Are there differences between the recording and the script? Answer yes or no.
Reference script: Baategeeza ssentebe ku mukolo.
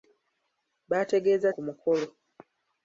yes